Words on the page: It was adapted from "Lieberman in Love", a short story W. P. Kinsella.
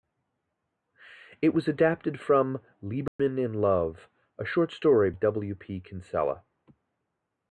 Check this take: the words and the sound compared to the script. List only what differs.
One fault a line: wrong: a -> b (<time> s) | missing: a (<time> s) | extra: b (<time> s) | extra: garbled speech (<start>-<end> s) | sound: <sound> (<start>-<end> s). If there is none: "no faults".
sound: dropout (3.1-3.2 s)